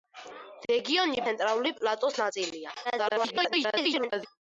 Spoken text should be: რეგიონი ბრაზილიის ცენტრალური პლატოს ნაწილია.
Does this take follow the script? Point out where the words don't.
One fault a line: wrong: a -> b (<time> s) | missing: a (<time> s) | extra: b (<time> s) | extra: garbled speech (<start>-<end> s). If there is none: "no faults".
missing: ბრაზილიის (1.2 s)
extra: garbled speech (2.8-4.3 s)